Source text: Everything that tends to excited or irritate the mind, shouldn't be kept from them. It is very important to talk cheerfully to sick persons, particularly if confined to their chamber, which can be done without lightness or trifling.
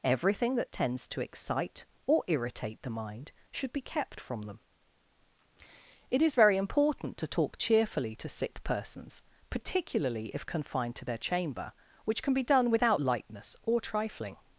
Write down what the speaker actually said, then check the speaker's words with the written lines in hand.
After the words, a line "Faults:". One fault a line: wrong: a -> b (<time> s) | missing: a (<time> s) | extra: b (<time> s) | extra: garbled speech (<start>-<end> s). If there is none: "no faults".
Everything that tends to excite or irritate the mind, should be kept from them. It is very important to talk cheerfully to sick persons, particularly if confined to their chamber, which can be done without lightness or trifling.
Faults:
wrong: excited -> excite (1.2 s)
wrong: shouldn't -> should (3.5 s)